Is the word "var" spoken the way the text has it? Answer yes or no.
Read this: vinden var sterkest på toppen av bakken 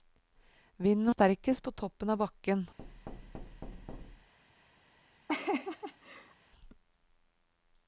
no